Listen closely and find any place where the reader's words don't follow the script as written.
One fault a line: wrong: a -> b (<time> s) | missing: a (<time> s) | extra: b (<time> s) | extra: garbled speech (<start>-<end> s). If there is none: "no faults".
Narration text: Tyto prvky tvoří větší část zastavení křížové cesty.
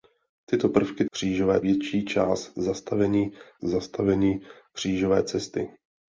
wrong: tvoří -> křížové (1.1 s)
extra: zastavení (3.6 s)